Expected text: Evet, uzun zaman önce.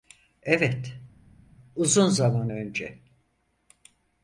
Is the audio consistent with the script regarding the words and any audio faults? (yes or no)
yes